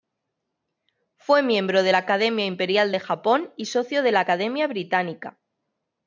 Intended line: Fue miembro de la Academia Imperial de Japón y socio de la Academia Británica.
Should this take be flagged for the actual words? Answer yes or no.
no